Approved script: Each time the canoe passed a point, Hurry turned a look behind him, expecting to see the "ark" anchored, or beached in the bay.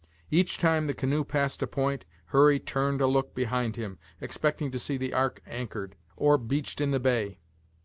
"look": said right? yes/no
yes